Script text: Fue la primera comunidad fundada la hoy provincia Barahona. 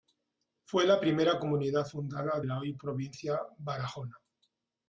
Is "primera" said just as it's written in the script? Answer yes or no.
yes